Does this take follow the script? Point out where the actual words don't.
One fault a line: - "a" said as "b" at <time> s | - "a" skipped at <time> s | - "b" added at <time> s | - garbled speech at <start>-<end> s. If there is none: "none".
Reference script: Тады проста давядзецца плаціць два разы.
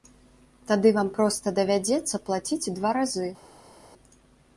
- "вам" added at 0.9 s